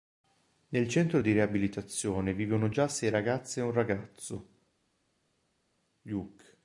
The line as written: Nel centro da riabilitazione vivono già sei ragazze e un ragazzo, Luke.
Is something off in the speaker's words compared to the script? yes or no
yes